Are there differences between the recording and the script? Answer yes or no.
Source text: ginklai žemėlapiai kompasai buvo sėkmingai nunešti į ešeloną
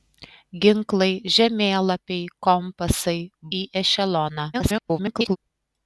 yes